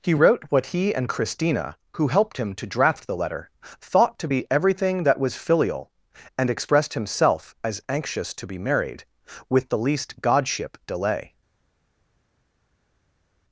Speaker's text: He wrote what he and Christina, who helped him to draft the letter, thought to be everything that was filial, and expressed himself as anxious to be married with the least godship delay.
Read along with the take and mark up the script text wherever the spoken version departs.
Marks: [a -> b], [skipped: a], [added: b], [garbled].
He wrote what he and Christina, who helped him to draft the letter, thought to be everything that was filial, and expressed himself as anxious to be married with the least godship delay.